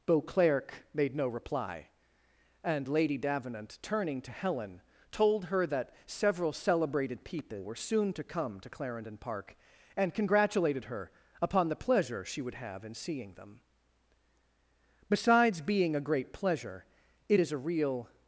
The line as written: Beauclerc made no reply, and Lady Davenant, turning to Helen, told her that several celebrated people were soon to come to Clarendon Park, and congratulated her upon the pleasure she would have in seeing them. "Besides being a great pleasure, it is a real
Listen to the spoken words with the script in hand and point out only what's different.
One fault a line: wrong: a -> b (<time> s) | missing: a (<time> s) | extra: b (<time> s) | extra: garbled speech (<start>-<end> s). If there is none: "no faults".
no faults